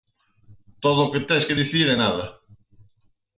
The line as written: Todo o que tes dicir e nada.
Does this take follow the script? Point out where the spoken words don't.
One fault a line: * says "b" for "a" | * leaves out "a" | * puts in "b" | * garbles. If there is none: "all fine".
* puts in "que"